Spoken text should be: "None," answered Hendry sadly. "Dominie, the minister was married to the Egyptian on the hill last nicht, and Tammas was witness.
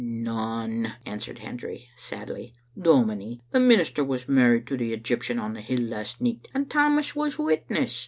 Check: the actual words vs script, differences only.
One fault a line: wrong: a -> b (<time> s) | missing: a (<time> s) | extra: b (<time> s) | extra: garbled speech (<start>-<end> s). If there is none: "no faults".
no faults